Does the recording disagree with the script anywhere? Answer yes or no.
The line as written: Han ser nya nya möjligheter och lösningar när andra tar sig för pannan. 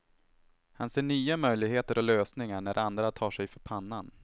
yes